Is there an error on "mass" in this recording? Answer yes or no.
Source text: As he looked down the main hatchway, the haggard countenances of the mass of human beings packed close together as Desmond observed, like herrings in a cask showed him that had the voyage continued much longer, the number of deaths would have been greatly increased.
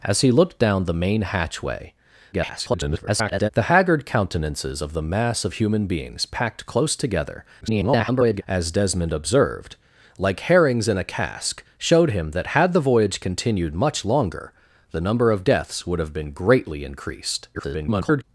no